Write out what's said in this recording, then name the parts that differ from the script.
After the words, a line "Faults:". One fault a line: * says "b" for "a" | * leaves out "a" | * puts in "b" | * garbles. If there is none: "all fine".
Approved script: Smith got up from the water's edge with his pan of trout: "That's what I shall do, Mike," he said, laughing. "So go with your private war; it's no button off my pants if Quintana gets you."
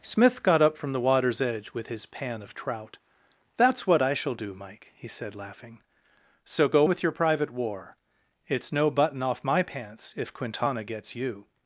Smith got up from the water's edge with his pan of trout: "That's what I shall do, Mike," he said, laughing. "So go with your private war; it's no button off my pants if Quintana gets you."
Faults:
all fine